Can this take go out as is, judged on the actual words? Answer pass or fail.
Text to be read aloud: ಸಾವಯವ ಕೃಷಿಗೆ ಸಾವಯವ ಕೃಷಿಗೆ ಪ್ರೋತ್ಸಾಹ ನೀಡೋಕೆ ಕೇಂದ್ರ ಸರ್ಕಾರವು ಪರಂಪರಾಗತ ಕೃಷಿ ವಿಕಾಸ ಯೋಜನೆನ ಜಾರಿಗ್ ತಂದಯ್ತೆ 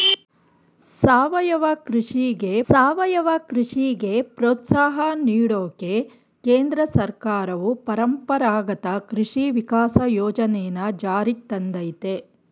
pass